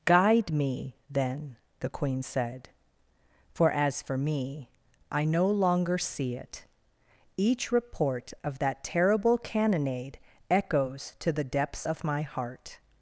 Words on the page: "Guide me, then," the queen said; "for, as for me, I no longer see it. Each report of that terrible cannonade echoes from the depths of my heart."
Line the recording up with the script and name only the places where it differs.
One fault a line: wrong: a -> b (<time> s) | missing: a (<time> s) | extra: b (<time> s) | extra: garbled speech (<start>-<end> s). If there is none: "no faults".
wrong: from -> to (11.2 s)